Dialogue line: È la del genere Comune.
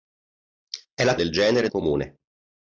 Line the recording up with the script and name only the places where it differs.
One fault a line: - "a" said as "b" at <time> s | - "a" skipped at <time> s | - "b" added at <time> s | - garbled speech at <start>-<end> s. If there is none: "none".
none